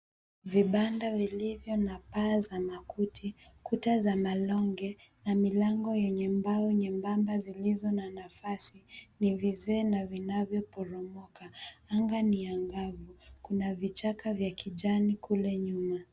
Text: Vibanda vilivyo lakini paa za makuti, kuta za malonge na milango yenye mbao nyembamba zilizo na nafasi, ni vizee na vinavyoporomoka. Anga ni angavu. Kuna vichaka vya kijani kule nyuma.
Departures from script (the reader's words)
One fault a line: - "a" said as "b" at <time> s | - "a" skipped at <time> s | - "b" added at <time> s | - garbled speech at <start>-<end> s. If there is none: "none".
- "lakini" said as "na" at 1.8 s